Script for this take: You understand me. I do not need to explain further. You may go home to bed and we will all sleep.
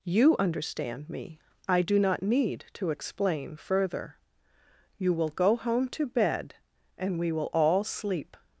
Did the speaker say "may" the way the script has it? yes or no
no